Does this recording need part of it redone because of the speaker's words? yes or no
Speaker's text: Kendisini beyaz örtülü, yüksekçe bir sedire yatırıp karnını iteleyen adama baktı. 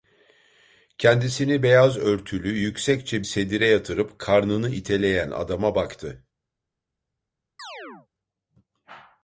yes